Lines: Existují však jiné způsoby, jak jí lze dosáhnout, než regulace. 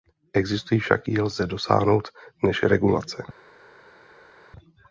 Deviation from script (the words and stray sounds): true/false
true